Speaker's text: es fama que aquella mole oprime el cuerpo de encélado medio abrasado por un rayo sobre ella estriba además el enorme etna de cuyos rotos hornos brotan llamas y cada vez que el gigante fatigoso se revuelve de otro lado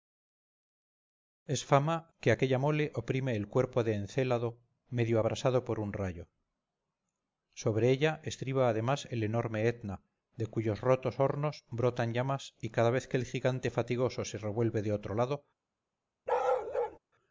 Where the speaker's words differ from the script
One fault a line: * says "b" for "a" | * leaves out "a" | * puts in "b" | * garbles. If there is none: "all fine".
all fine